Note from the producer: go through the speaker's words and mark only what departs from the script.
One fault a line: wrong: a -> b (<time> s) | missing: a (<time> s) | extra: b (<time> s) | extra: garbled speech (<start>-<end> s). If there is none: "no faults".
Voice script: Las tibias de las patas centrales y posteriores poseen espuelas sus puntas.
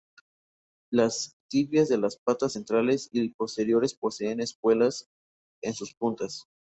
extra: en (5.6 s)